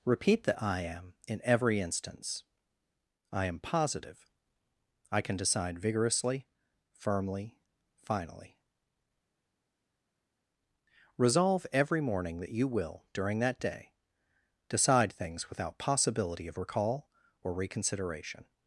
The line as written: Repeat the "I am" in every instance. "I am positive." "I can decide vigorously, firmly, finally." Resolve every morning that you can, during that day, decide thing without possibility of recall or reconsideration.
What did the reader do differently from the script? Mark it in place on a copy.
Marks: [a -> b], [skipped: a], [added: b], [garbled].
Repeat the "I am" in every instance. "I am positive." "I can decide vigorously, firmly, finally." Resolve every morning that you [can, -> will] during that day, decide [thing -> things] without possibility of recall or reconsideration.